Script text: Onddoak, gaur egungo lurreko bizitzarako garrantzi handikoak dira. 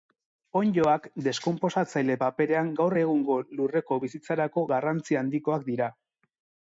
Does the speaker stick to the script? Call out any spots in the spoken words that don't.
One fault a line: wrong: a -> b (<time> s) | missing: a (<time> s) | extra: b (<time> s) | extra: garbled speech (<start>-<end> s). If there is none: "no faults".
extra: deskonposatzaile paperean (1.2 s)